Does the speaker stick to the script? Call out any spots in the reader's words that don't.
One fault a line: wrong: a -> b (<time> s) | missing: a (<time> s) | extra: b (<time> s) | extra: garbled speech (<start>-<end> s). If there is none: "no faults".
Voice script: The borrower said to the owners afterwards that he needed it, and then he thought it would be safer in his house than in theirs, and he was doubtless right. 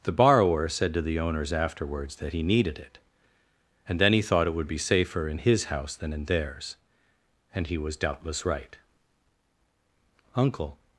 extra: Uncle (10.4 s)